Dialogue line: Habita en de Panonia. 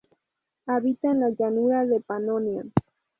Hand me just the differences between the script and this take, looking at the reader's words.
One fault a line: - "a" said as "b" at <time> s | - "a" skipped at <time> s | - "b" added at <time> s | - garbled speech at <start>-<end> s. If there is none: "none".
- "la llanura" added at 1.2 s